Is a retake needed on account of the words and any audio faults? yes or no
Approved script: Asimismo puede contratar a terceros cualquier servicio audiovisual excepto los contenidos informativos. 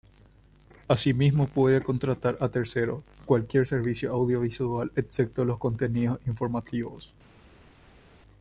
no